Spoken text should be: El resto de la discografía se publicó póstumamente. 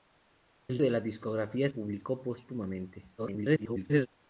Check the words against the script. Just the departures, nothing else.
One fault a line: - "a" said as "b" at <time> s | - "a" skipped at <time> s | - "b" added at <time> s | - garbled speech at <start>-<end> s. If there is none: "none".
- "resto" skipped at 0.8 s
- "se" skipped at 1.7 s
- garbled speech at 3.2-4.1 s